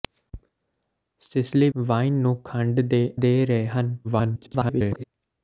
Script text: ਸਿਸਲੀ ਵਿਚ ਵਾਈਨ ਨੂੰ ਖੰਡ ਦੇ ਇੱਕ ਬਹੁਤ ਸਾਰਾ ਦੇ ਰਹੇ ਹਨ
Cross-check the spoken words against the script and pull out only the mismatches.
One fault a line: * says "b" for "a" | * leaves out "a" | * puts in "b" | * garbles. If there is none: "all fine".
* leaves out "ਵਿਚ"
* leaves out "ਇੱਕ ਬਹੁਤ ਸਾਰਾ"
* garbles